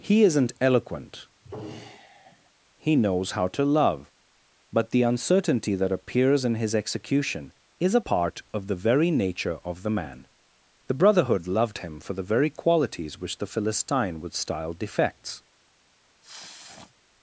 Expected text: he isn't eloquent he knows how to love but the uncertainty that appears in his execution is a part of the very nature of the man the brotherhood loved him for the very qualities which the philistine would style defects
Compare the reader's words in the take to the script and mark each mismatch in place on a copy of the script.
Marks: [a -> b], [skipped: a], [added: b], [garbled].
he isn't eloquent he knows how to love but the uncertainty that appears in his execution is a part of the very nature of the man the brotherhood loved him for the very qualities which the philistine would style defects